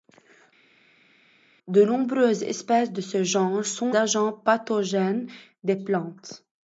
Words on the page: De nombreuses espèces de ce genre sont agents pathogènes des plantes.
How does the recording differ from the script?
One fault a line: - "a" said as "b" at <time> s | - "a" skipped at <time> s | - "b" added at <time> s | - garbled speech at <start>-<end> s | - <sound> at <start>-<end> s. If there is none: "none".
none